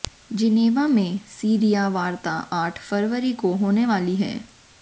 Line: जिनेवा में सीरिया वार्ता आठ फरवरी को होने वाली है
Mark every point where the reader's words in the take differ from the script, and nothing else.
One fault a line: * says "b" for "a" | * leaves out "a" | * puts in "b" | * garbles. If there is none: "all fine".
all fine